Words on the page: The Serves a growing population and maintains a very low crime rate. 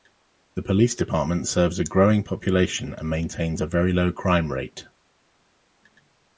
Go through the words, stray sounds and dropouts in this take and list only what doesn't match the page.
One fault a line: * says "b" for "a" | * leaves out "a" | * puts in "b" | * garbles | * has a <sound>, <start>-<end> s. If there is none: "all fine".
* puts in "Police department"